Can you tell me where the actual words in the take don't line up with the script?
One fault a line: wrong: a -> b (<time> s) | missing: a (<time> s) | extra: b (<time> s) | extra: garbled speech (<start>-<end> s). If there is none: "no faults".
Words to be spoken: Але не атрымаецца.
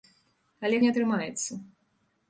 no faults